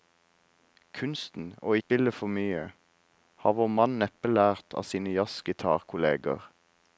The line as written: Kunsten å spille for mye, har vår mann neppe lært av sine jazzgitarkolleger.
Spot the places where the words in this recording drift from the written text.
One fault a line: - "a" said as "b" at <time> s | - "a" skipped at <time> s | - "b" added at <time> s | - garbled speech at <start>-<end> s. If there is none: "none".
none